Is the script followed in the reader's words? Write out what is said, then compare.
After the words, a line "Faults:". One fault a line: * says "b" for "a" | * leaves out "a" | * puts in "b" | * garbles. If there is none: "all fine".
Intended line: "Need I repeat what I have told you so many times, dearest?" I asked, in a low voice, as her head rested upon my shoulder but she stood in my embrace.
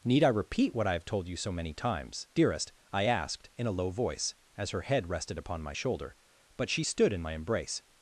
"Need I repeat what I have told you so many times, dearest?" I asked, in a low voice, as her head rested upon my shoulder but she stood in my embrace.
Faults:
all fine